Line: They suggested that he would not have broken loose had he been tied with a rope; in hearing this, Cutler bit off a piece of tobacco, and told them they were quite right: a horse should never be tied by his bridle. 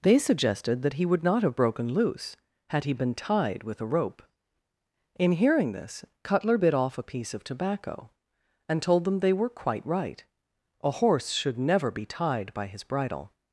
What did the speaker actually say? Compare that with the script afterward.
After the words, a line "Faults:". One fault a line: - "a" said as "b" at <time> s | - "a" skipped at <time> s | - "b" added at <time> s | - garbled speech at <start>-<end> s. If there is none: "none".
They suggested that he would not have broken loose had he been tied with a rope; in hearing this, Cutler bit off a piece of tobacco, and told them they were quite right: a horse should never be tied by his bridle.
Faults:
none